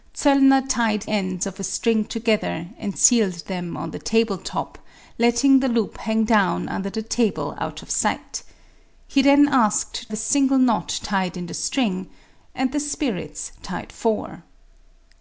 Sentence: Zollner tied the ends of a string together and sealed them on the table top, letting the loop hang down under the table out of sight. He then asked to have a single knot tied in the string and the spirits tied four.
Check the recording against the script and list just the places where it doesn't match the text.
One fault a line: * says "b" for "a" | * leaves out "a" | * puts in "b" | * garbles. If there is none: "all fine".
* leaves out "the"
* leaves out "to have"